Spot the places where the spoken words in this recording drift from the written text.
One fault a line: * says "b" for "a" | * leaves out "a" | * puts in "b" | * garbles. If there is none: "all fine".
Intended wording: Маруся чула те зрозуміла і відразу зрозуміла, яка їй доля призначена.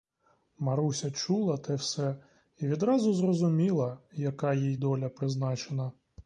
* says "все" for "зрозуміла"